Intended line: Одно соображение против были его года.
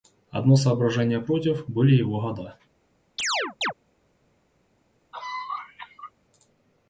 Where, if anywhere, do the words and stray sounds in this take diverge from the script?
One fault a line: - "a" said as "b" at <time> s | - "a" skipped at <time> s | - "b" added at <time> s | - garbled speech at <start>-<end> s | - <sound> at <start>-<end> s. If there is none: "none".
- chirp at 3.2-3.7 s
- cough at 5.1-6.1 s